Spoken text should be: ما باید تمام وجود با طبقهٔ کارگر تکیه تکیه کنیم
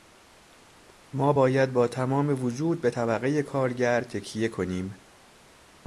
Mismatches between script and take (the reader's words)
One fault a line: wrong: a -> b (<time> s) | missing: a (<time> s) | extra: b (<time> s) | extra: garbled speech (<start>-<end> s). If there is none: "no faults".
extra: با (1.7 s)
wrong: با -> به (2.8 s)
missing: تکیه (4.5 s)